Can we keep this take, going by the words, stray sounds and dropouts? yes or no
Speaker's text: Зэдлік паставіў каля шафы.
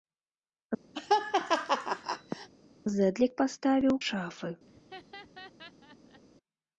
no